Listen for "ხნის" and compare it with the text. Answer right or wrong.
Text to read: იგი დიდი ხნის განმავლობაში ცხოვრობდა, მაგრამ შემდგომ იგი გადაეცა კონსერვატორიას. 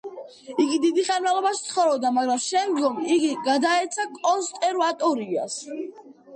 wrong